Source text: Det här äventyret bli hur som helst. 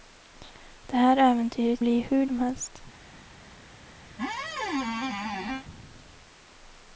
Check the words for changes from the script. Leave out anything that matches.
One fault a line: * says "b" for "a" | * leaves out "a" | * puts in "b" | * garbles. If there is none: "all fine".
all fine